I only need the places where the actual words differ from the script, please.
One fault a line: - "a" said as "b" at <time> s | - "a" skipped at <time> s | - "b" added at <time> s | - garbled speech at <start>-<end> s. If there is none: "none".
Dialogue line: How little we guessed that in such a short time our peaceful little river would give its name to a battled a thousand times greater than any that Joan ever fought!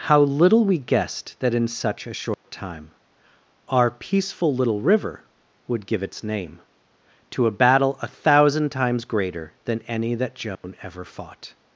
- "battled" said as "battle" at 7.5 s